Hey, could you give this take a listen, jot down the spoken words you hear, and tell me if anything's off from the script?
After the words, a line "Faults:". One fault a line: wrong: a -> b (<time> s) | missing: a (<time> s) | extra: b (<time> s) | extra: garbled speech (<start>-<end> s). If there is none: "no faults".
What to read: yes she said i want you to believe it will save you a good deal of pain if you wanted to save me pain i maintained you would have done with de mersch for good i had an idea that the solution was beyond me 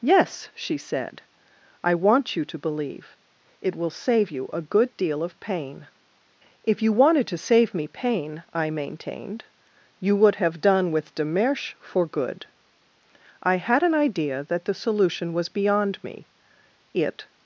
yes she said i want you to believe it will save you a good deal of pain if you wanted to save me pain i maintained you would have done with de mersch for good i had an idea that the solution was beyond me it
Faults:
extra: it (16.9 s)